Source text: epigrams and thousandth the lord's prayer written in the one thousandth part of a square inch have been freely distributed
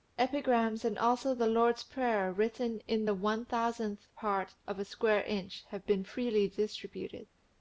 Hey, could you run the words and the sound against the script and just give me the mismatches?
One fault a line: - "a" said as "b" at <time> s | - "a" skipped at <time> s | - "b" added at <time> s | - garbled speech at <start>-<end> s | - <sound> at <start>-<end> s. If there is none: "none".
- "thousandth" said as "also" at 1.0 s